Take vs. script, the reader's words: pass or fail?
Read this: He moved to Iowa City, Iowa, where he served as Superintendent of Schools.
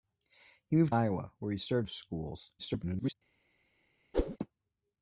fail